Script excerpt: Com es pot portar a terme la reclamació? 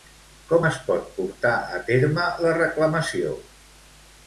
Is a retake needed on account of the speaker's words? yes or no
no